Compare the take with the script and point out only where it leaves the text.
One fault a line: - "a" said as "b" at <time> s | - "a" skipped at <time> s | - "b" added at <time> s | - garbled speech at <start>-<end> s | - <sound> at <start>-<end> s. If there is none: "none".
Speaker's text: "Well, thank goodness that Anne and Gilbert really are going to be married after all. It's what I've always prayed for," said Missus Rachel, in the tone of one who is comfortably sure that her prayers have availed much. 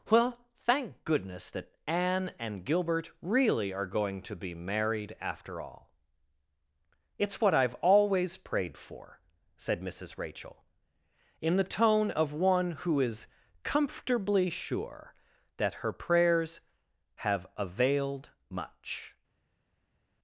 none